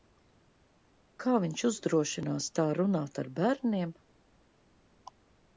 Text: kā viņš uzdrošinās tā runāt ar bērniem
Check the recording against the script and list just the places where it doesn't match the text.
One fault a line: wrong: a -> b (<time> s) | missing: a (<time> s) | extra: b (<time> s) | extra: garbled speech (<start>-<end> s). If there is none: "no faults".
no faults